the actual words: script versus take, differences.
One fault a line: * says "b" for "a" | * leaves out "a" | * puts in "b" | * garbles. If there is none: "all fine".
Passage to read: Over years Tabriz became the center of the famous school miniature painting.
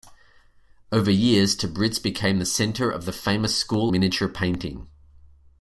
all fine